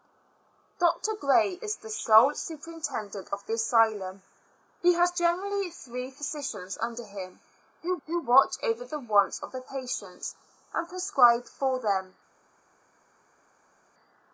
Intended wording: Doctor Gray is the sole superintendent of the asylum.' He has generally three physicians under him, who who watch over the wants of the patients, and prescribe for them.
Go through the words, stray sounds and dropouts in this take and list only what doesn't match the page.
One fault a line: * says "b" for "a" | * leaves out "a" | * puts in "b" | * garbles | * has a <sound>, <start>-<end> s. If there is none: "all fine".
all fine